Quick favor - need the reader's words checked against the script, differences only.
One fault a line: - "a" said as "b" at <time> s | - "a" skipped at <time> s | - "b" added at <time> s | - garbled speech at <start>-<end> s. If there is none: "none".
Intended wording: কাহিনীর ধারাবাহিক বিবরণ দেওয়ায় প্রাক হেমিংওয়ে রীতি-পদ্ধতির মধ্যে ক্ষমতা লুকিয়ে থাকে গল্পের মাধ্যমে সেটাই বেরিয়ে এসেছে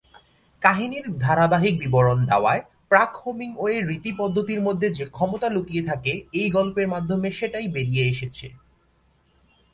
- "যে" added at 4.9 s
- "এই" added at 6.3 s